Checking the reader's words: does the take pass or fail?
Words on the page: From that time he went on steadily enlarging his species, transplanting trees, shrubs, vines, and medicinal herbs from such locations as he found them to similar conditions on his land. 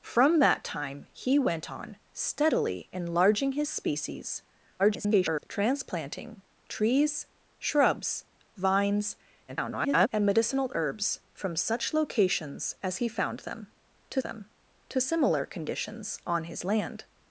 fail